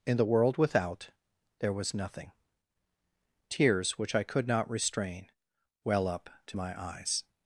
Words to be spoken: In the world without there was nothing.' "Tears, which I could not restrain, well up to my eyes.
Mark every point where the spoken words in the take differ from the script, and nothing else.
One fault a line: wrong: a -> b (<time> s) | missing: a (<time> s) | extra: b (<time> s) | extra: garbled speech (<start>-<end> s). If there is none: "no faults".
no faults